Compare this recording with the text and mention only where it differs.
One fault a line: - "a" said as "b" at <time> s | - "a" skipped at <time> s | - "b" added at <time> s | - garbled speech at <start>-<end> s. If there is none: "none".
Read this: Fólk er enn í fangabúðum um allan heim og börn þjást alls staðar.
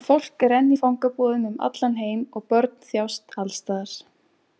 none